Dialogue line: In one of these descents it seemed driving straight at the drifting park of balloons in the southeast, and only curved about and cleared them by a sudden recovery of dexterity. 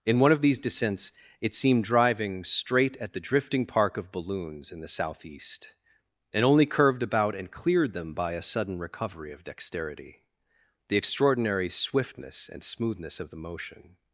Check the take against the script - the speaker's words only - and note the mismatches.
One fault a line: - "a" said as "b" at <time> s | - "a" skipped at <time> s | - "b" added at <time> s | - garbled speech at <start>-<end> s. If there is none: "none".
- "The extraordinary swiftness and smoothness of the motion" added at 10.9 s